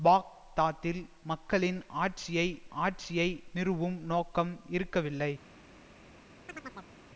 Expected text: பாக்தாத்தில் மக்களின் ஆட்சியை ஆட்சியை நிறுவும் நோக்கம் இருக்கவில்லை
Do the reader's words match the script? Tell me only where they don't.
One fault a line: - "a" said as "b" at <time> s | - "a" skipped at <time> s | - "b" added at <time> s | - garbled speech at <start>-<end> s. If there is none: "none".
none